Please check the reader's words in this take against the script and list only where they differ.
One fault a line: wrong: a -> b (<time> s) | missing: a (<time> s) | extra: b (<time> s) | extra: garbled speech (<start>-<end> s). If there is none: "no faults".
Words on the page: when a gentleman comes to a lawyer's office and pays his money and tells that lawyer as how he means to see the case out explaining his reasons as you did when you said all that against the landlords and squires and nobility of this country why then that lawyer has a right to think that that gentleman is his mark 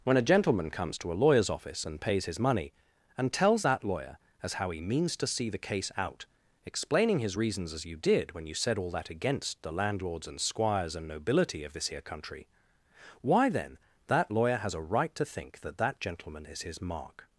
extra: here (11.9 s)